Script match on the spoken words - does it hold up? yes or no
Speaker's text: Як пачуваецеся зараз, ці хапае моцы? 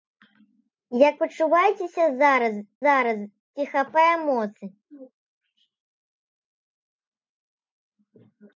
no